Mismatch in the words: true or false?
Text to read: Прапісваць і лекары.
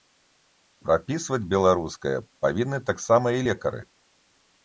true